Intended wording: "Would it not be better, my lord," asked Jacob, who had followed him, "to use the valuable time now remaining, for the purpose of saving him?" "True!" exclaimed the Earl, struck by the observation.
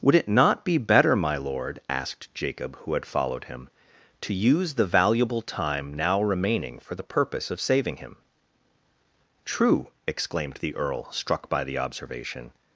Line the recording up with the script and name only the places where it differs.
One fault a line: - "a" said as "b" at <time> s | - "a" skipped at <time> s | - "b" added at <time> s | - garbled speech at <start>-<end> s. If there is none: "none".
none